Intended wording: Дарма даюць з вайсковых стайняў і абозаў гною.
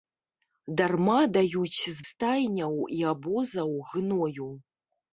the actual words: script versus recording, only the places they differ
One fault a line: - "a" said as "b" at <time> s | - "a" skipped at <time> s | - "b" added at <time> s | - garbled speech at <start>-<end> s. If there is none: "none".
- "вайсковых" skipped at 1.9 s